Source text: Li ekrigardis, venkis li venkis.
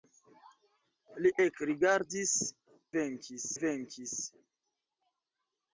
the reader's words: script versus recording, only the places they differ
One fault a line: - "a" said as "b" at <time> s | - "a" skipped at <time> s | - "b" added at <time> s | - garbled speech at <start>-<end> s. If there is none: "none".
none